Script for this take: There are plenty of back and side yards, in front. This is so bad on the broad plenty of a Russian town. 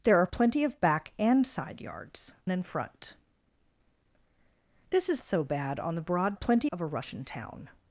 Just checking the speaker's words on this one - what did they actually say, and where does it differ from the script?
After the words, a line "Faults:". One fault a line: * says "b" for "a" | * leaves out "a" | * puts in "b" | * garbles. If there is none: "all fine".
There are plenty of back and side yards, in front. This is so bad on the broad plenty of a Russian town.
Faults:
all fine